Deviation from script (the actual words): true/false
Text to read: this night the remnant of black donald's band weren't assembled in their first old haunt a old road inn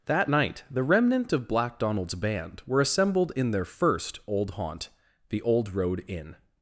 true